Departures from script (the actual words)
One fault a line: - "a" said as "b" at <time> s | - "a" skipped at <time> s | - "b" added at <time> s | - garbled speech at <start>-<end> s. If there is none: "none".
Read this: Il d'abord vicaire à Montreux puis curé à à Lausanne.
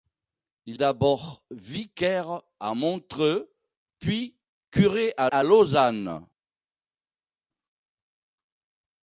none